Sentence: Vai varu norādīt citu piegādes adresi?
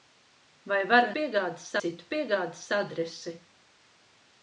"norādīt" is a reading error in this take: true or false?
true